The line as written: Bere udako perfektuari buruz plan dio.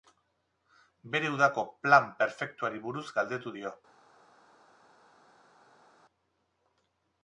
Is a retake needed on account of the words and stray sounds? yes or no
yes